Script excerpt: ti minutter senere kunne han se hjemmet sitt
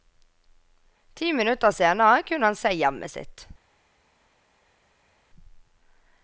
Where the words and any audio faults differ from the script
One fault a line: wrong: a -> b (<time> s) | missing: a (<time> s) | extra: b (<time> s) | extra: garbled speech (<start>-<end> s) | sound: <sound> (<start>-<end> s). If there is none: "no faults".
no faults